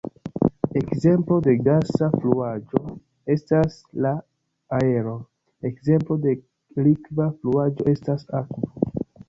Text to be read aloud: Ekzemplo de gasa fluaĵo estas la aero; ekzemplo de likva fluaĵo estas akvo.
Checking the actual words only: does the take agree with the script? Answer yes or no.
yes